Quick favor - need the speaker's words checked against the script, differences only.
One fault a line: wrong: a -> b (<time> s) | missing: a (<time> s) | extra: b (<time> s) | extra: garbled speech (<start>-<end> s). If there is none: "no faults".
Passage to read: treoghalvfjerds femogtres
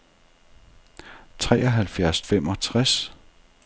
no faults